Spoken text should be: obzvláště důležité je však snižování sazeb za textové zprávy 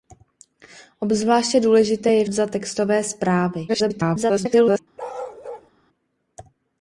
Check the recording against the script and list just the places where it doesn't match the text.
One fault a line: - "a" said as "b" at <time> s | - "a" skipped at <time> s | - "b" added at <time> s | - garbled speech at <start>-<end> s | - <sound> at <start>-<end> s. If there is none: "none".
- "však snižování sazeb" skipped at 2.2 s
- garbled speech at 3.7-4.8 s
- bark at 5.0-5.7 s